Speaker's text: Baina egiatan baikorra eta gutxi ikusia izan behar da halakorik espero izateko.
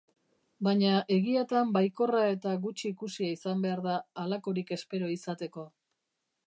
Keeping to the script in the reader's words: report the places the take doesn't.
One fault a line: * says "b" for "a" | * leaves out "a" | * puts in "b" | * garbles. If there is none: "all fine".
all fine